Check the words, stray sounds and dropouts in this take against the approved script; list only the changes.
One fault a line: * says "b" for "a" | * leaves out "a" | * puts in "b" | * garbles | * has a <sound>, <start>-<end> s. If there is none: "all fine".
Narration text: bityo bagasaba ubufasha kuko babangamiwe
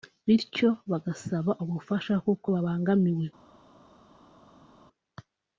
all fine